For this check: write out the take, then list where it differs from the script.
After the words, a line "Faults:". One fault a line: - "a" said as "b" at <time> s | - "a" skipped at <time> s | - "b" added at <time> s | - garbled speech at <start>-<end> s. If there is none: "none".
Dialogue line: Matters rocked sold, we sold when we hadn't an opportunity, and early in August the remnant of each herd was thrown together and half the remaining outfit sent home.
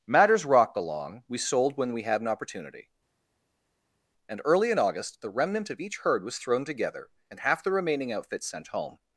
Matters rocked along, we sold when we had an opportunity, and early in August the remnant of each herd was thrown together and half the remaining outfit sent home.
Faults:
- "sold" said as "along" at 0.8 s
- "hadn't" said as "had" at 2.0 s